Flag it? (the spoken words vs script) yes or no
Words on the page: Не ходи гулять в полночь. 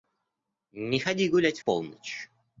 yes